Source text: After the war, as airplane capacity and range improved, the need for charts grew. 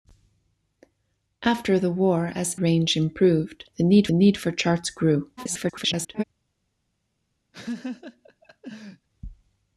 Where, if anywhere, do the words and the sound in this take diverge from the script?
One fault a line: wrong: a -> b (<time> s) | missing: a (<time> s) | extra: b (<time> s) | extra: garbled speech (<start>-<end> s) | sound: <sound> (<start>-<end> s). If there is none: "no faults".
missing: airplane capacity and (2.5 s)
extra: need (4.1 s)
extra: garbled speech (5.4-6.2 s)
sound: laugh (7.5-9.1 s)